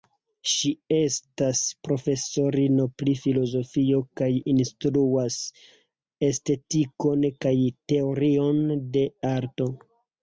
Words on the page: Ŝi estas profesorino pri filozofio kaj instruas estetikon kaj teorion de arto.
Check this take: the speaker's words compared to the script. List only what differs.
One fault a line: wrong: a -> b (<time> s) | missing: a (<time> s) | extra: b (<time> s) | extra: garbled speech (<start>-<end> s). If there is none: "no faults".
no faults